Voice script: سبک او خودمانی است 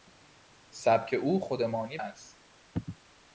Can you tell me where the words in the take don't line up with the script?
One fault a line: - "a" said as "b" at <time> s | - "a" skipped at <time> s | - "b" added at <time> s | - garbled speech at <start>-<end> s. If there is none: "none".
none